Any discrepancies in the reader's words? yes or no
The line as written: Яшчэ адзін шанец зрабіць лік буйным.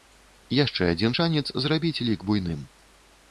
no